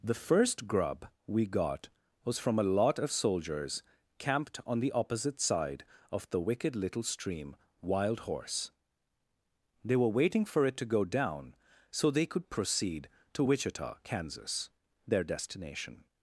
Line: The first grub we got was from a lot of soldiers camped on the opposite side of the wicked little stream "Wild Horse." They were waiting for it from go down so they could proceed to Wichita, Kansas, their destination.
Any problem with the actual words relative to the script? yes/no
yes